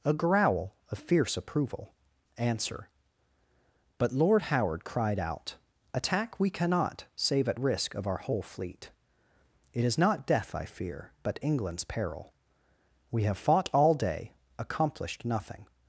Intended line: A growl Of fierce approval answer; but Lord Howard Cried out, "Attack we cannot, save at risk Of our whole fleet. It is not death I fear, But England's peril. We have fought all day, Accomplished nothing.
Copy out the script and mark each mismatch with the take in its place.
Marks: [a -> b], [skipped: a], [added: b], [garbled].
A growl Of fierce approval answer; but Lord Howard Cried out, "Attack we cannot, save at risk Of our whole fleet. It is not death I fear, But England's peril. We have fought all day, Accomplished nothing.